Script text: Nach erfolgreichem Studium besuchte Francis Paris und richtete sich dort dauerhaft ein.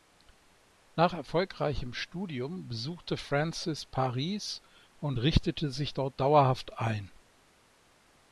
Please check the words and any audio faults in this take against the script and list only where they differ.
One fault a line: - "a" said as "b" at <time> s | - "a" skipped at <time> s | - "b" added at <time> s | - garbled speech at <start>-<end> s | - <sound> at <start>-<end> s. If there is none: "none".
none